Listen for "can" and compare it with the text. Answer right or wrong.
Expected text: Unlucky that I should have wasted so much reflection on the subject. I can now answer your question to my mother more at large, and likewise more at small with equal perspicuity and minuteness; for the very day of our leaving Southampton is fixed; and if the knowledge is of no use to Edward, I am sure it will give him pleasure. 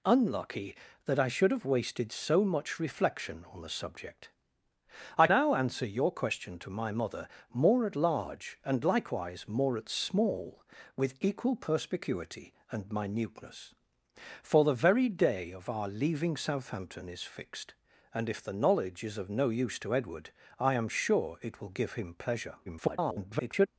wrong